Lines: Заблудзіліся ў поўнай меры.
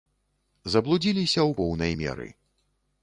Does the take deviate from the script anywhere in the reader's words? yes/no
no